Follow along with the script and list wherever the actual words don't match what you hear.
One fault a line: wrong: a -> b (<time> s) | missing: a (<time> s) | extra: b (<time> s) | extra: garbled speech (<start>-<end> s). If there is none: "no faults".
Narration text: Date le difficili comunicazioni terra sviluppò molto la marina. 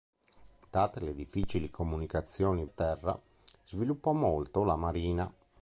no faults